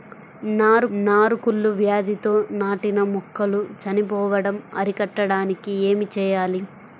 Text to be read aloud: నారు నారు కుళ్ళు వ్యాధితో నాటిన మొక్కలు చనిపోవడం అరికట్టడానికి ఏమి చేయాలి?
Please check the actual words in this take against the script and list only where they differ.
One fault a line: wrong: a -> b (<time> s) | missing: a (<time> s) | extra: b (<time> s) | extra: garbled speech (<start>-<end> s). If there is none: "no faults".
no faults